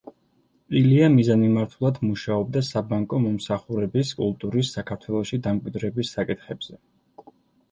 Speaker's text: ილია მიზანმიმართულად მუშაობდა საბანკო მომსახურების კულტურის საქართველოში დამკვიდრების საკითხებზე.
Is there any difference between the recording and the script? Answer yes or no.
no